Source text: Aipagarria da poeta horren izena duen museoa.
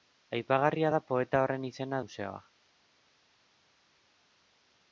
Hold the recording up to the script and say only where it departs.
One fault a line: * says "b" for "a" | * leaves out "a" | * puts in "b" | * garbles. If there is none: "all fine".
* leaves out "duen"